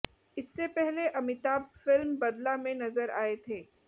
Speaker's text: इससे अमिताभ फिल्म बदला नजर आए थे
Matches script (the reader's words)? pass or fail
fail